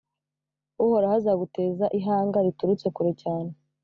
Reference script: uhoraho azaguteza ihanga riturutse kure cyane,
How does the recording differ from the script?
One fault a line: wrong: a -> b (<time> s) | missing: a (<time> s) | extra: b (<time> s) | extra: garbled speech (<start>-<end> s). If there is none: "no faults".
no faults